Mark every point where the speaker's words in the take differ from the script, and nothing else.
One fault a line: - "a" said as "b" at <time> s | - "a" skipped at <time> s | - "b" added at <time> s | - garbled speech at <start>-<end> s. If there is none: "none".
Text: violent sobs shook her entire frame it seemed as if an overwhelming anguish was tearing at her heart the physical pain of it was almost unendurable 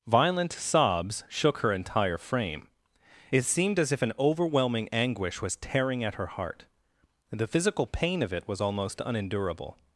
none